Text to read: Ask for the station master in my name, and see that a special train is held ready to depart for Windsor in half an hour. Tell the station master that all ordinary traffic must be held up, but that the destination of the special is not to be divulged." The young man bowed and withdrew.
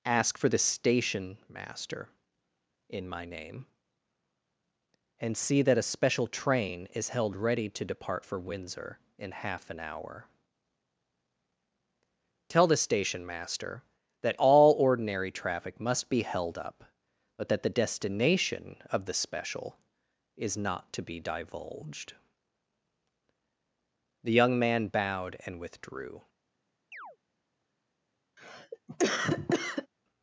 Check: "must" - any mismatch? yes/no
no